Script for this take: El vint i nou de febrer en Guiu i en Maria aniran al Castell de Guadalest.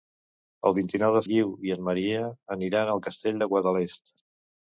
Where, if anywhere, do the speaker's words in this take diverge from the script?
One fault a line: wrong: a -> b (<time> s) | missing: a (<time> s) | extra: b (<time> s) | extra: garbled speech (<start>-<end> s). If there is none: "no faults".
missing: febrer en (1.2 s)